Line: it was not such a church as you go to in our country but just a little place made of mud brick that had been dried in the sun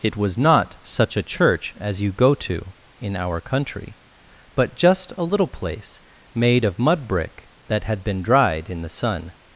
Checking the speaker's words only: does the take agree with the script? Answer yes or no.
yes